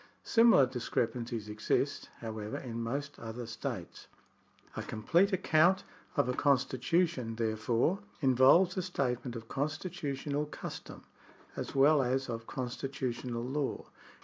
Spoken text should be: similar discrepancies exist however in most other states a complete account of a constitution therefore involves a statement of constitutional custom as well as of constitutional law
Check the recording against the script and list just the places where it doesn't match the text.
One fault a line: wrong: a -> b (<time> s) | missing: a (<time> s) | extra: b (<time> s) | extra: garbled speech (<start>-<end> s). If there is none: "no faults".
no faults